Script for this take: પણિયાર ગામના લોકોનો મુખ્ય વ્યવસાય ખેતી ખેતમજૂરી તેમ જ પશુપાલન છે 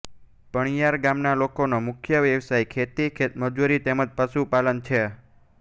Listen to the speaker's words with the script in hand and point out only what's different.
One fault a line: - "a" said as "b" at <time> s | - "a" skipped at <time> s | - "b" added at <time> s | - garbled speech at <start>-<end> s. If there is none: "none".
none